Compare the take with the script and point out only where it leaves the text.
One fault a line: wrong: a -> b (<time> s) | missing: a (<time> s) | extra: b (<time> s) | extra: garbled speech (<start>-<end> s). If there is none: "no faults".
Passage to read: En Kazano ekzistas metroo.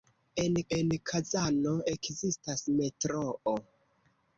extra: en (0.8 s)